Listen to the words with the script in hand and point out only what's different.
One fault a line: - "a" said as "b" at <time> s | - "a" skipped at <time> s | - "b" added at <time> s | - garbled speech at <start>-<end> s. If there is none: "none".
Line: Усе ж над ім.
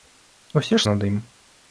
none